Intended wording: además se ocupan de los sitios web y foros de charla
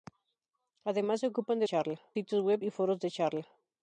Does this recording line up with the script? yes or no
no